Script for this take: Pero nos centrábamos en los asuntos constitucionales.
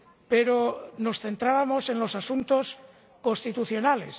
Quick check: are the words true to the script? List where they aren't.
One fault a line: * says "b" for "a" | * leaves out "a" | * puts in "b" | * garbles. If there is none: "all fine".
all fine